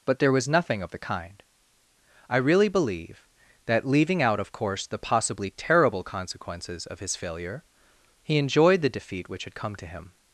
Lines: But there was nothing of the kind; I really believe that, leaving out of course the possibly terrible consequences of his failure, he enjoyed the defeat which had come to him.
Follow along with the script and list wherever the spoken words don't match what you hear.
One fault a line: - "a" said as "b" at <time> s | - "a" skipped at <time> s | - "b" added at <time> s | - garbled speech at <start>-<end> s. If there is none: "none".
none